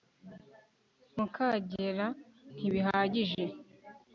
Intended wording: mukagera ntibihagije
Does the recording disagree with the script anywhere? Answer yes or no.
no